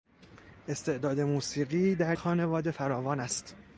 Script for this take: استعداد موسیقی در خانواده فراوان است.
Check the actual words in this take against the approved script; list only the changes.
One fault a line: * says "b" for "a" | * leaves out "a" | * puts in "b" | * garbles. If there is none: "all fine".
all fine